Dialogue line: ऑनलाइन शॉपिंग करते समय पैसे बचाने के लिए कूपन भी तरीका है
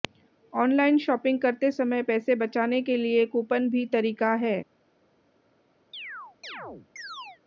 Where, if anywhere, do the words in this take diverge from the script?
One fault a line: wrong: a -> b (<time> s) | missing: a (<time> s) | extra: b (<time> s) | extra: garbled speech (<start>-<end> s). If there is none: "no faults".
no faults